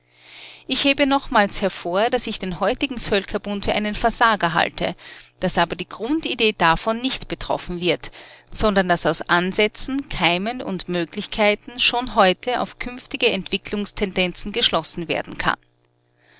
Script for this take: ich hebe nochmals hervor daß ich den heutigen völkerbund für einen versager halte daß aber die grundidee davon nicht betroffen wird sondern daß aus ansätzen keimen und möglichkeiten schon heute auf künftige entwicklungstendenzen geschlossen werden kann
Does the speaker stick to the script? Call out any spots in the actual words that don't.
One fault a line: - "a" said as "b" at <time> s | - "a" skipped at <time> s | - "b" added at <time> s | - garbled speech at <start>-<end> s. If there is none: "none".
none